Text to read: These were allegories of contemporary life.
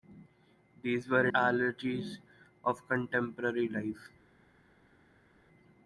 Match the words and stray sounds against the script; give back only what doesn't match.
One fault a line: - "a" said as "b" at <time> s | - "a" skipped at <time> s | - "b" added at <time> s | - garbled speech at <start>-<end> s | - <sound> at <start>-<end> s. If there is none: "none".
none